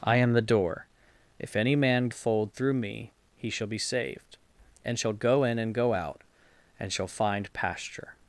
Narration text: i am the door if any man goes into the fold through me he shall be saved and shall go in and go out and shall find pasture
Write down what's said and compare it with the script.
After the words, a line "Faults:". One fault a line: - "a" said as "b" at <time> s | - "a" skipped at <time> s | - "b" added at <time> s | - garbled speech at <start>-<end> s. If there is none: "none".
i am the door if any man fold through me he shall be saved and shall go in and go out and shall find pasture
Faults:
- "goes into the" skipped at 2.1 s